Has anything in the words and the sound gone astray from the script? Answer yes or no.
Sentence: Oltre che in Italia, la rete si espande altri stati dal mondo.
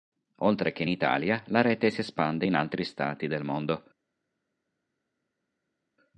yes